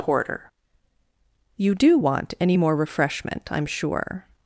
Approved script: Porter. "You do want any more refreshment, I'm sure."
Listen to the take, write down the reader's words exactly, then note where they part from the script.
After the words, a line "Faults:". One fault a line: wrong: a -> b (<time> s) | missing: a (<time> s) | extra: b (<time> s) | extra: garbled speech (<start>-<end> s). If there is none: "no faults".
Porter. "You do want any more refreshment, I'm sure."
Faults:
no faults